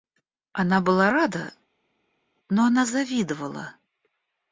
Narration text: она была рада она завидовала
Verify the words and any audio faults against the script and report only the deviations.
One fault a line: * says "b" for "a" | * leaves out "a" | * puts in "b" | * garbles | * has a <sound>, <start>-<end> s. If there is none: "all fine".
* puts in "но"